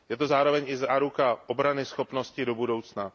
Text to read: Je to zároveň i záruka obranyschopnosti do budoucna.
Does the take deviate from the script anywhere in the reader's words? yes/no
no